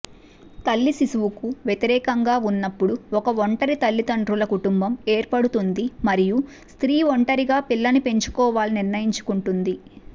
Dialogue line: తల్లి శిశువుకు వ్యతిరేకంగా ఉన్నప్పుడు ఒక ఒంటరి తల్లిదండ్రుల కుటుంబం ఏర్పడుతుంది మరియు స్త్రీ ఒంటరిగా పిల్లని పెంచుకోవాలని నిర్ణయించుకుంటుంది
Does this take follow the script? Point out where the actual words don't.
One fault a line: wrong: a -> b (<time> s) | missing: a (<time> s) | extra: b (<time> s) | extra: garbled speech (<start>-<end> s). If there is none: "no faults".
no faults